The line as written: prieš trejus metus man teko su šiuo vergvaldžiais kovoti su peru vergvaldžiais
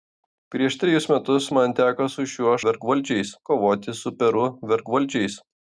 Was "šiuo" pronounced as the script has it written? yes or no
yes